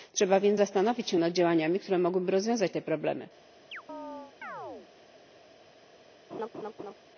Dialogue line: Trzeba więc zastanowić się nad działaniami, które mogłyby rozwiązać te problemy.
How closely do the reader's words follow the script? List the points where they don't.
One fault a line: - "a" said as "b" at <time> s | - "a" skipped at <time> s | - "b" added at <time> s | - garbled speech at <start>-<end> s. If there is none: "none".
none